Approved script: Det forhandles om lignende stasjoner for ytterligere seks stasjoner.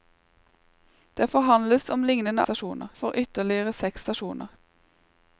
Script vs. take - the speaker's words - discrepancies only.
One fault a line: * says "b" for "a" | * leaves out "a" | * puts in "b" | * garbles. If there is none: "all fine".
all fine